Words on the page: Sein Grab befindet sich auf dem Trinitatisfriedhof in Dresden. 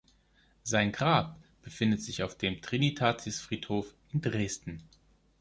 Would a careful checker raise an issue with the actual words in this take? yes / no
no